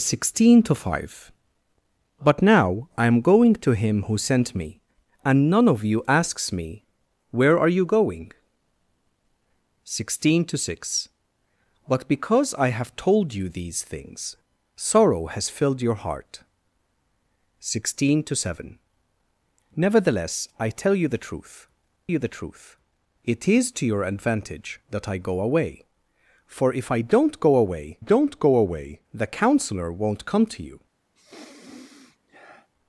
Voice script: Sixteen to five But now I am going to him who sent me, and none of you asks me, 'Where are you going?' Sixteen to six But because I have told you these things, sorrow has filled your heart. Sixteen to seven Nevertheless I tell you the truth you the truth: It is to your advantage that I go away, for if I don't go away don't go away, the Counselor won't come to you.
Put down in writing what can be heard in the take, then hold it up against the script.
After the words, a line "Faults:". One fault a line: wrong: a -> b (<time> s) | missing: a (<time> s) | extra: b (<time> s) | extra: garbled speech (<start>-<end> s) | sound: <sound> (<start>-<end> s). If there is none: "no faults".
Sixteen to five But now I am going to him who sent me, and none of you asks me, 'Where are you going?' Sixteen to six But because I have told you these things, sorrow has filled your heart. Sixteen to seven Nevertheless I tell you the truth you the truth: It is to your advantage that I go away, for if I don't go away don't go away, the Counselor won't come to you.
Faults:
sound: sniff (31.1-32.7 s)